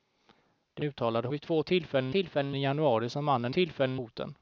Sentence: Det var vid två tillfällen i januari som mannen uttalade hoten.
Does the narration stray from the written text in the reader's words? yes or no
yes